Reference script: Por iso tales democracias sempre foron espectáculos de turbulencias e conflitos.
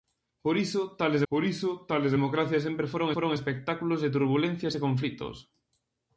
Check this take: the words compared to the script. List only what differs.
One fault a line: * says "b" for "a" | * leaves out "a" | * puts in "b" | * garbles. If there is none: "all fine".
* puts in "por iso tales"
* puts in "foron"